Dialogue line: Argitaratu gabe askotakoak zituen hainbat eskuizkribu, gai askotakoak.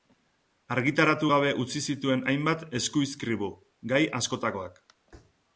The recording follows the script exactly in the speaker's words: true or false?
false